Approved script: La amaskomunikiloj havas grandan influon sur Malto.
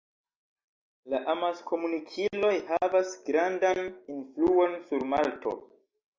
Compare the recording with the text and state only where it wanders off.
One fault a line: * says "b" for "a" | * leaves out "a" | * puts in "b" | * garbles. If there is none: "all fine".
all fine